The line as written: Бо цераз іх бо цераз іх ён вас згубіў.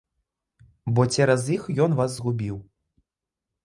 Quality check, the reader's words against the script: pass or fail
fail